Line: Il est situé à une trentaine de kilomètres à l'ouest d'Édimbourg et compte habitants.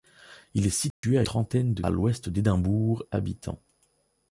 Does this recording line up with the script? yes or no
no